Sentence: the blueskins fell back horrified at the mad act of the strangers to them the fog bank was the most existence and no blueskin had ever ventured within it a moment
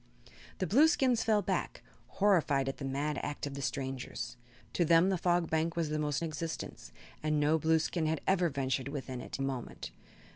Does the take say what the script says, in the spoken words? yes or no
yes